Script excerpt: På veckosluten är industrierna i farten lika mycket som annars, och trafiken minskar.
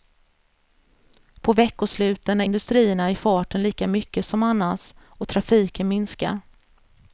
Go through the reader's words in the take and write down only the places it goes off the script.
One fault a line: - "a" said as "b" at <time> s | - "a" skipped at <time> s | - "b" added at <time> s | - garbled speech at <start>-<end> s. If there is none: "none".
none